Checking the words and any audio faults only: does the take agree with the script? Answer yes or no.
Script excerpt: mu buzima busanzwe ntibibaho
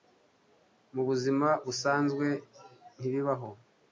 yes